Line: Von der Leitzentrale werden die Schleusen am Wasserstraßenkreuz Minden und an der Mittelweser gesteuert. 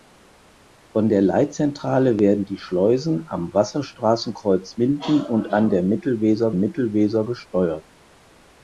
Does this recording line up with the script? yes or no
no